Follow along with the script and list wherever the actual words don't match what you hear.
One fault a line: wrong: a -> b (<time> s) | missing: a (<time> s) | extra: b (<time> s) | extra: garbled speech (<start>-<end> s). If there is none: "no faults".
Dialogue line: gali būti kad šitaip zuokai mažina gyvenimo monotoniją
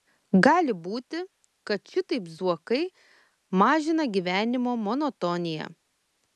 no faults